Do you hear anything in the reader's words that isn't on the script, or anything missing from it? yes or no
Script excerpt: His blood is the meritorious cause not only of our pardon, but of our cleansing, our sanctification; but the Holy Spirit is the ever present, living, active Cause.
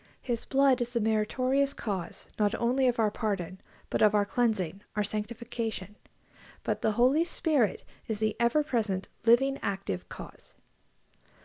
no